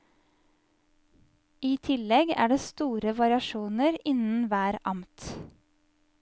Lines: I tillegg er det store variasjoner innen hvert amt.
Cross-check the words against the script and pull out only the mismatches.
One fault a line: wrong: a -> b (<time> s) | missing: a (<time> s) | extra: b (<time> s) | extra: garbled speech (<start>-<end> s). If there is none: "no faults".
no faults